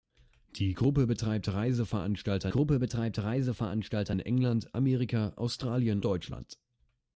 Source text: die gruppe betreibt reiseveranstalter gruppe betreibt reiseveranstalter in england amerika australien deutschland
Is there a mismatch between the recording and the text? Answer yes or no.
no